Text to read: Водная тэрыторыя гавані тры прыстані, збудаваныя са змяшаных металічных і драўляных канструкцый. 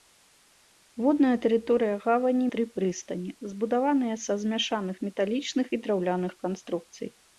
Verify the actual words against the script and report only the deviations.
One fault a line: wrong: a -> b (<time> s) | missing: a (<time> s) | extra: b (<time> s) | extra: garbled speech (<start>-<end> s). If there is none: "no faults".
no faults